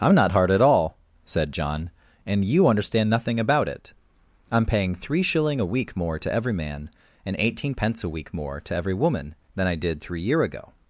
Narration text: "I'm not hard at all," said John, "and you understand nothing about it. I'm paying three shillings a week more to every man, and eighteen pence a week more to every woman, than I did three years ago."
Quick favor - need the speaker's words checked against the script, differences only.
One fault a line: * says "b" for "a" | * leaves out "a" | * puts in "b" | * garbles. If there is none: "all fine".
* says "shilling" for "shillings"
* says "year" for "years"